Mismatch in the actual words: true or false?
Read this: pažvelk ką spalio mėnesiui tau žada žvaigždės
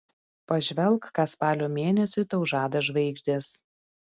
false